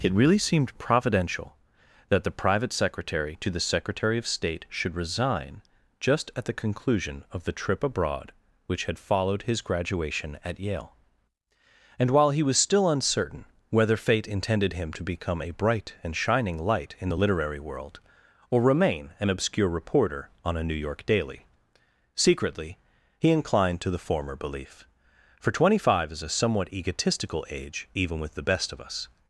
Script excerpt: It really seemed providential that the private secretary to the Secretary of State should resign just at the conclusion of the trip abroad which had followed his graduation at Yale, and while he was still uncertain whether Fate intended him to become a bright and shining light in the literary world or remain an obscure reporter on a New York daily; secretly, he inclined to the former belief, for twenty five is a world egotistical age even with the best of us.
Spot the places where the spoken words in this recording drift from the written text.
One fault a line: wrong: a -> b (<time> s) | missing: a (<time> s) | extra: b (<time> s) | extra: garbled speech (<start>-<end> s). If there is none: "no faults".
wrong: world -> somewhat (26.3 s)